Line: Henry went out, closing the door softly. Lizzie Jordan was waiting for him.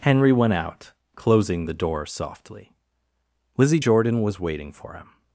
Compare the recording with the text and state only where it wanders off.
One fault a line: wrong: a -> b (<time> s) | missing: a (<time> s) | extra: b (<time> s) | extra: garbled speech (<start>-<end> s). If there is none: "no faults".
no faults